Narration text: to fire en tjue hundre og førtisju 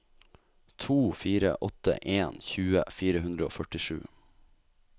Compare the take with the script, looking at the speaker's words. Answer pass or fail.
fail